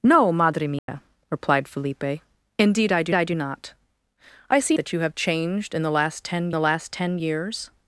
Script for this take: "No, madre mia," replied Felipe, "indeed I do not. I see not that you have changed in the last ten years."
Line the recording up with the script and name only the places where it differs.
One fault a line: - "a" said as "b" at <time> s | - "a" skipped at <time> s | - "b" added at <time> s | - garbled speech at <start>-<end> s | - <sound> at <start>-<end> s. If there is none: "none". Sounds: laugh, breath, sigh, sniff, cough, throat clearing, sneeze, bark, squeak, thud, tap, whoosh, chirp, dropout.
- dropout at 0.8-0.9 s
- "I do" added at 3.1 s
- "not" skipped at 4.8 s
- "the last ten" added at 6.5 s